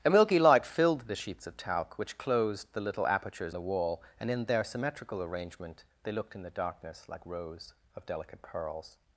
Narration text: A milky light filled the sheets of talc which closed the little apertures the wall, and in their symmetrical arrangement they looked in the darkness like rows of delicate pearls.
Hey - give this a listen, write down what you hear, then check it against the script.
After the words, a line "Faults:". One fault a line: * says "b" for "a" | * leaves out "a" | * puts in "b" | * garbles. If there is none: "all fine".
A milky light filled the sheets of talc which closed the little apertures the wall, and in their symmetrical arrangement they looked in the darkness like rows of delicate pearls.
Faults:
all fine